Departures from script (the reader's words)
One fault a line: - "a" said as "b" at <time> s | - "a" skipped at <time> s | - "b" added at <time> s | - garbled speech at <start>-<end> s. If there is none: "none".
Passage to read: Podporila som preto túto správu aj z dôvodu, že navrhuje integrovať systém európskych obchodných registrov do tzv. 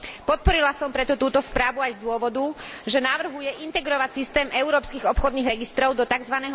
none